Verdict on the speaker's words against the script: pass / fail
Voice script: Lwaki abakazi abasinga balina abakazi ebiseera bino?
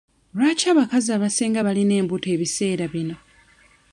fail